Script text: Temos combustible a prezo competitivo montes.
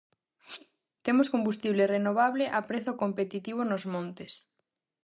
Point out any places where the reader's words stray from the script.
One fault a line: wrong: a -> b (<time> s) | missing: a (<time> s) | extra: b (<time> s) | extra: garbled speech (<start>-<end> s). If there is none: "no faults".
extra: renovable (1.9 s)
extra: nos (3.7 s)